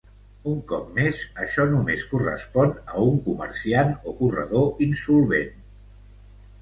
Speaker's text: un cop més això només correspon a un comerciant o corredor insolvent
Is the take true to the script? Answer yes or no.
yes